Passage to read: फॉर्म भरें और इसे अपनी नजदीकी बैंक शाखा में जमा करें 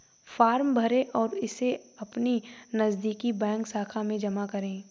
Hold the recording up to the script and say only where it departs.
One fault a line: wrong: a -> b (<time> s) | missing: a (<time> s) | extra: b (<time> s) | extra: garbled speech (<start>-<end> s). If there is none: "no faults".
no faults